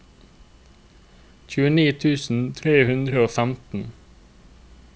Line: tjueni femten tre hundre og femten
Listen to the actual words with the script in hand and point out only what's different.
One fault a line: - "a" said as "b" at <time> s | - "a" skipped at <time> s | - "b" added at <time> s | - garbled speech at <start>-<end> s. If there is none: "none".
- "femten" said as "tusen" at 2.0 s